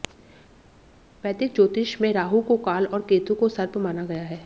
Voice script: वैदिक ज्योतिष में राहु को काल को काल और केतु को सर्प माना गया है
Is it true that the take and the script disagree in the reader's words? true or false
true